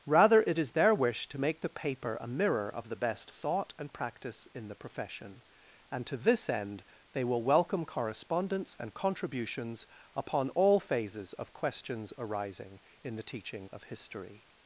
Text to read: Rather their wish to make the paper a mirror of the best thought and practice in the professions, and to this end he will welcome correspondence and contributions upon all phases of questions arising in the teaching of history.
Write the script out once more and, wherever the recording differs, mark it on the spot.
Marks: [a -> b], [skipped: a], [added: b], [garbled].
Rather [added: it is] their wish to make the paper a mirror of the best thought and practice in the [professions, -> profession] and to this end [he -> they] will welcome correspondence and contributions upon all phases of questions arising in the teaching of history.